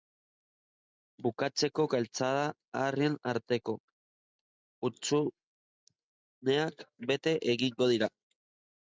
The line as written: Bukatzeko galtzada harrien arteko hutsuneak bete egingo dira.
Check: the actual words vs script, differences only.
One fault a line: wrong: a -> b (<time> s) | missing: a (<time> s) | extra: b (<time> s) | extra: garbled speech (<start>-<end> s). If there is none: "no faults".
no faults